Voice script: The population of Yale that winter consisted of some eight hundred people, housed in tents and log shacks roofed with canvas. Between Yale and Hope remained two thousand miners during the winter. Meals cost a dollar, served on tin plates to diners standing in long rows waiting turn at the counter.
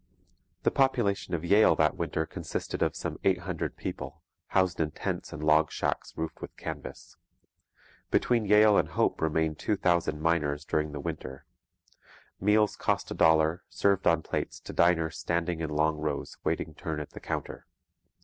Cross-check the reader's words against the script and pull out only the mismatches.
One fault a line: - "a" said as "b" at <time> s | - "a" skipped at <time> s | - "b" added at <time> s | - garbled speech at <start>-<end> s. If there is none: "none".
- "tin" skipped at 14.2 s